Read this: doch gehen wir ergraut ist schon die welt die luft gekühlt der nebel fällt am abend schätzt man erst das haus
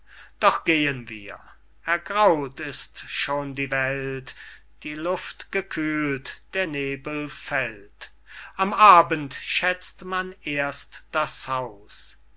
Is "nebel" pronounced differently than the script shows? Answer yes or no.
no